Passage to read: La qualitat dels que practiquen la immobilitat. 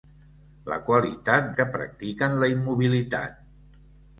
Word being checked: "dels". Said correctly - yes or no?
no